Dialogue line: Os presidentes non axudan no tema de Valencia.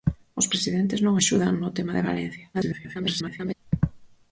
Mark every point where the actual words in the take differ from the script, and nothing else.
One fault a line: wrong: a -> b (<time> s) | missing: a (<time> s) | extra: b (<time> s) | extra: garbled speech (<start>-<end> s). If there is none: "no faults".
extra: garbled speech (2.5-3.5 s)